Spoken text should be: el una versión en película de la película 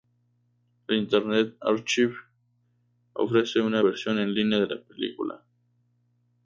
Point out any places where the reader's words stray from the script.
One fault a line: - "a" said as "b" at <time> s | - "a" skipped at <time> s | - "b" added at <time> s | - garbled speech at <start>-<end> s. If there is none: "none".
- "internet archive ofrece" added at 1.0 s
- "película" said as "línea" at 4.3 s